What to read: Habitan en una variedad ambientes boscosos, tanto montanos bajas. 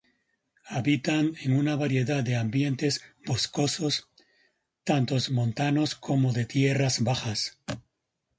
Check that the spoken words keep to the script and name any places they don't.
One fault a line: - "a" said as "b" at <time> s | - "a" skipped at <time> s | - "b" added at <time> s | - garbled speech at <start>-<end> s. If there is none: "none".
- "de" added at 2.2 s
- "como de tierras" added at 6.0 s